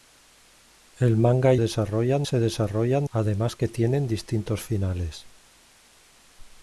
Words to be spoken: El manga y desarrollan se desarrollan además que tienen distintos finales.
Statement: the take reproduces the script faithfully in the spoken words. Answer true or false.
true